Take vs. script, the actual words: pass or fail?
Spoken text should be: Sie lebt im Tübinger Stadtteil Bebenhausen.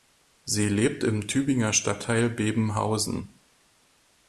pass